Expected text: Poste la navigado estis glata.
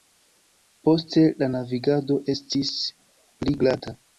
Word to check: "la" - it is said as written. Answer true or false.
true